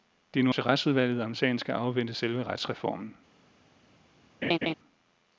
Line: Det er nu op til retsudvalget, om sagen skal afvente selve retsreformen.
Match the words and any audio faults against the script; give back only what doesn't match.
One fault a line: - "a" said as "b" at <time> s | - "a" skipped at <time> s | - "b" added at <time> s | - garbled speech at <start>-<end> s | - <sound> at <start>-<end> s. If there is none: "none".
- "op" skipped at 0.5 s
- laugh at 4.4-4.7 s